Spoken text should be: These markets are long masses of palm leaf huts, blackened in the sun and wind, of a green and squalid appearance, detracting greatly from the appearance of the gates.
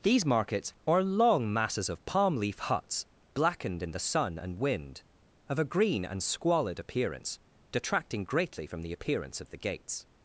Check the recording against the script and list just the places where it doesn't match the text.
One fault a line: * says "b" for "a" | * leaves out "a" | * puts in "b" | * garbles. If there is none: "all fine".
all fine